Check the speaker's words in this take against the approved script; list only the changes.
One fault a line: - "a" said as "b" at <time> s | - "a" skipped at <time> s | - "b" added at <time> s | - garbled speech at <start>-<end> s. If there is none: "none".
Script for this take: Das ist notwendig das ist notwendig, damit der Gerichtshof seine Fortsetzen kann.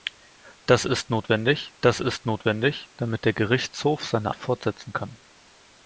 none